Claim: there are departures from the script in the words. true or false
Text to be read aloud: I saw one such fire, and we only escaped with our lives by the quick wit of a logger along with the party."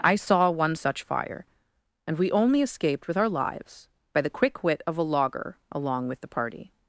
false